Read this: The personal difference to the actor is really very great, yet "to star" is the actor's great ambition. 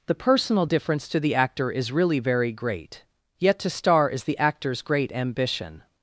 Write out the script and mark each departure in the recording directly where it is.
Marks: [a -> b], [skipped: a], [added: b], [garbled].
The personal difference to the actor is really very great, yet "to star" is the actor's great ambition.